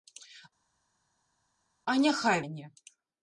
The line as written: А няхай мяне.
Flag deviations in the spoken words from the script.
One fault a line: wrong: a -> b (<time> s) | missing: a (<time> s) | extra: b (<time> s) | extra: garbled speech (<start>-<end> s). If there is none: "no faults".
no faults